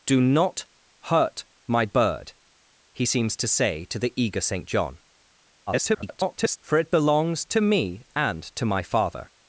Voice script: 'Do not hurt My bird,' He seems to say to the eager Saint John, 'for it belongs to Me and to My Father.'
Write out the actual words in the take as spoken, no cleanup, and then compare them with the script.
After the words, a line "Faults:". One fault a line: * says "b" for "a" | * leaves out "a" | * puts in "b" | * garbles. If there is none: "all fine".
'Do not hurt My bird,' He seems to say to the eager Saint John, [garbled] 'for it belongs to Me and to My Father.'
Faults:
* garbles